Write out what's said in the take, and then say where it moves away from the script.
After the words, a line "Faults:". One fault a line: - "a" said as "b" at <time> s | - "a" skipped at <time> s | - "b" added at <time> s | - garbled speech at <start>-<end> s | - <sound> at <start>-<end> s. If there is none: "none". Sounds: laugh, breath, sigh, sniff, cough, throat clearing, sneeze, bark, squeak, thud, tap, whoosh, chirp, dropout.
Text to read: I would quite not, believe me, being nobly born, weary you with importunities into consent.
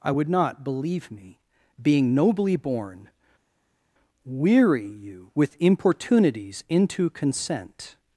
I would not, believe me, being nobly born, weary you with importunities into consent.
Faults:
- "quite" skipped at 0.3 s